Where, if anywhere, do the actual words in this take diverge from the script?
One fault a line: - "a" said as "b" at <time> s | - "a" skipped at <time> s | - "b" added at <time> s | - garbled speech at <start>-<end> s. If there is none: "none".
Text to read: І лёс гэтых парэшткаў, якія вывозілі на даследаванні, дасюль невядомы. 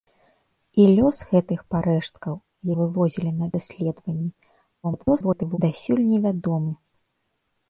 - "якія" skipped at 2.4 s
- garbled speech at 4.8-5.6 s